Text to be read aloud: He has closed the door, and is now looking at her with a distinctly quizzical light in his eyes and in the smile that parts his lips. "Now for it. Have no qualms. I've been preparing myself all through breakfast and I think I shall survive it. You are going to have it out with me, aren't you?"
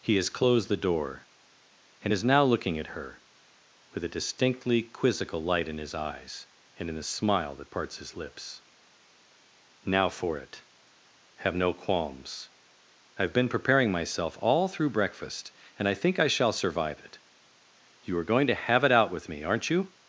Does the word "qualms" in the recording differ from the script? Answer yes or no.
no